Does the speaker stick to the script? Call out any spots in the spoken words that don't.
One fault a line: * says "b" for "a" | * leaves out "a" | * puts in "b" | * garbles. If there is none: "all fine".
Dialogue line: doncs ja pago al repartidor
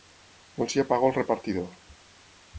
all fine